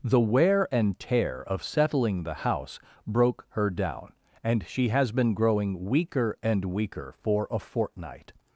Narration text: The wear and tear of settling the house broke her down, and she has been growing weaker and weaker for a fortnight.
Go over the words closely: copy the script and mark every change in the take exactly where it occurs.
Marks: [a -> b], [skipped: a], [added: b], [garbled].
The wear and tear of settling the house broke her down, and she has been growing weaker and weaker for a fortnight.